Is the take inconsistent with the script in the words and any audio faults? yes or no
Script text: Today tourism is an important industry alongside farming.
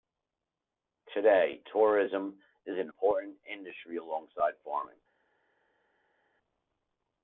no